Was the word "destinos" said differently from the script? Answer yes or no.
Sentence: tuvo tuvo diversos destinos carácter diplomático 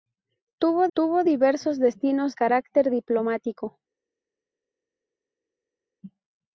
no